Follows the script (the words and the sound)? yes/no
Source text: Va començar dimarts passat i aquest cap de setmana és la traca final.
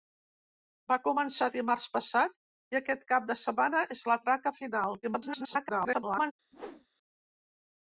no